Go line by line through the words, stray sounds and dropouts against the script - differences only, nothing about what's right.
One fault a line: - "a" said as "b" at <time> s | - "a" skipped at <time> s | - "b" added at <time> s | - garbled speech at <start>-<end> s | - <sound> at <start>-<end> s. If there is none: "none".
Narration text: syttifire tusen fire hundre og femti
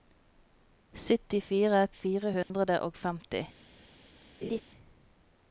- "tusen" skipped at 1.8 s
- dropout at 2.4-2.5 s
- laugh at 4.4-4.6 s